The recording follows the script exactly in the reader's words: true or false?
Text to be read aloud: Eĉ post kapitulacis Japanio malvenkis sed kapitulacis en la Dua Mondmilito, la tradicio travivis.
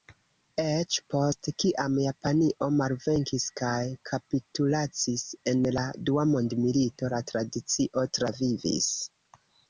false